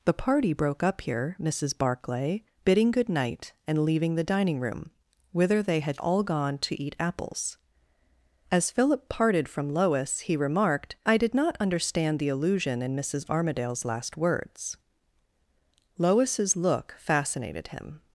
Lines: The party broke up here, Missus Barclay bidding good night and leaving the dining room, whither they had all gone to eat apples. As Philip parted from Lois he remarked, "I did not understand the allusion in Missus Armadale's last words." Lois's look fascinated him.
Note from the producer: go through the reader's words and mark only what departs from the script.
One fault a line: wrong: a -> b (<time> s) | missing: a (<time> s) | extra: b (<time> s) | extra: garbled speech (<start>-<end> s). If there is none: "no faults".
no faults